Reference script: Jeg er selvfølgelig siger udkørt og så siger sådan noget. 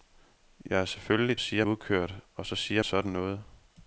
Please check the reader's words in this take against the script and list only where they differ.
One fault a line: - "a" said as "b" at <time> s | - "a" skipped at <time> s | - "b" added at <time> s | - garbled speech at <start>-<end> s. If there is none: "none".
none